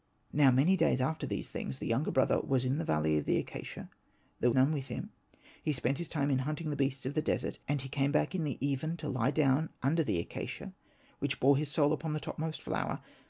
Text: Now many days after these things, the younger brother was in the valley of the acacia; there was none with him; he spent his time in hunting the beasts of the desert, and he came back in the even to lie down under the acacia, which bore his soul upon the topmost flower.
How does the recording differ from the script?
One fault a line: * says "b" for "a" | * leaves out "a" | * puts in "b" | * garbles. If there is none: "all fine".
* leaves out "was"